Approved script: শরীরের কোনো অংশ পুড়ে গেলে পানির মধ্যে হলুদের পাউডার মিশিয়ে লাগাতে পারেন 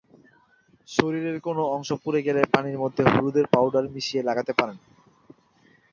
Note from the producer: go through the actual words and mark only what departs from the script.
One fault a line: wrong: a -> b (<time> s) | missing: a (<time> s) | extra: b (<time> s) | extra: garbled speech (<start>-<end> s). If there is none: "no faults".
no faults